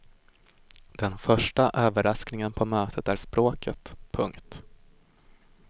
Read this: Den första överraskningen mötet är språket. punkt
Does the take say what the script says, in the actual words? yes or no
no